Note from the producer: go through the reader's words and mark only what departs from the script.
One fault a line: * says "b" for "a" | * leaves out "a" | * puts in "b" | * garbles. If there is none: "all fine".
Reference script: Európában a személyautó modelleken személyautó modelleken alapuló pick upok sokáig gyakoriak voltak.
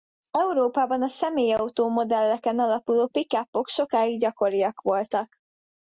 * leaves out "személyautó modelleken"